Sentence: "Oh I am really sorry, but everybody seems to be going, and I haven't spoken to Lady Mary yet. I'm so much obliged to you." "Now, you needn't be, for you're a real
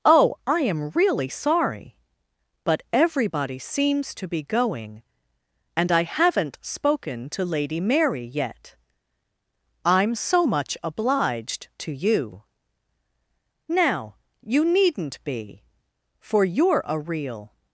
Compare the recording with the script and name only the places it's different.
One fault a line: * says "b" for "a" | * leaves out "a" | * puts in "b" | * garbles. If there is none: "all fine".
all fine